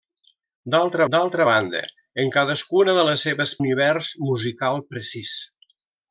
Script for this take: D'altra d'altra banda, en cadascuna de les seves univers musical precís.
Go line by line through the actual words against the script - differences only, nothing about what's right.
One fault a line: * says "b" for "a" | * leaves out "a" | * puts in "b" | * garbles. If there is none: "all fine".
all fine